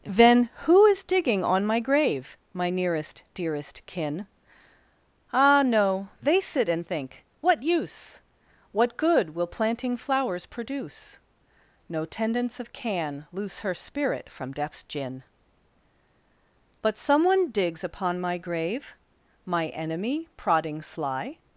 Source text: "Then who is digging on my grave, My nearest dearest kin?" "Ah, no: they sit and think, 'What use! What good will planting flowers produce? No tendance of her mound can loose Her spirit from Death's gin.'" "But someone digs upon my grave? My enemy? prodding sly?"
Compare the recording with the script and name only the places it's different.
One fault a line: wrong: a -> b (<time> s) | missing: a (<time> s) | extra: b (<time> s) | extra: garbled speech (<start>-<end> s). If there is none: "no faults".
missing: her mound (12.7 s)